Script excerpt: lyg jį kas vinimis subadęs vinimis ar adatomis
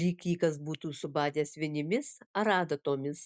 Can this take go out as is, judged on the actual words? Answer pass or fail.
fail